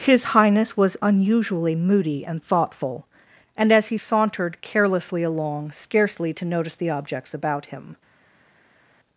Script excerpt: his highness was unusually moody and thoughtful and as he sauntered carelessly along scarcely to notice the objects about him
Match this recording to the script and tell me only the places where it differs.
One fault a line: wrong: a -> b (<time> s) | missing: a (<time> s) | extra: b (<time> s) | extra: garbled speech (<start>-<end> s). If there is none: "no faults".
no faults